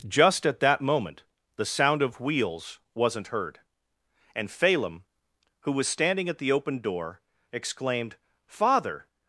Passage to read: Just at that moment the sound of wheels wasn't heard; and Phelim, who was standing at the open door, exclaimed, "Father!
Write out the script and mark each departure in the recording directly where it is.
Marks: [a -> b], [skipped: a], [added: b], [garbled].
Just at that moment the sound of wheels wasn't heard; and Phelim, who was standing at the open door, exclaimed, "Father!